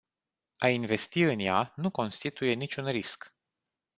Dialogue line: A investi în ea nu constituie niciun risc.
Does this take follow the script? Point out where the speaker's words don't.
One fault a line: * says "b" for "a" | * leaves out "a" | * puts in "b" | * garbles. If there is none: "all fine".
all fine